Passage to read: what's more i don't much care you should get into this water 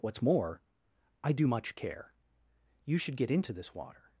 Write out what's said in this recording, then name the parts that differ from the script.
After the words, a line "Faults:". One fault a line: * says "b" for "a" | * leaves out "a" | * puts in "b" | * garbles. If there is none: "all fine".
what's more i do much care you should get into this water
Faults:
* says "do" for "don't"